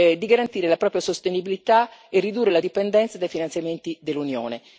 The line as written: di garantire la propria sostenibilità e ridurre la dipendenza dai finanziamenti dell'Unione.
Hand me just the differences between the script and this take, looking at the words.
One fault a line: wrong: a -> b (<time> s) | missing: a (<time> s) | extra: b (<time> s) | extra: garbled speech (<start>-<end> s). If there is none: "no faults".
no faults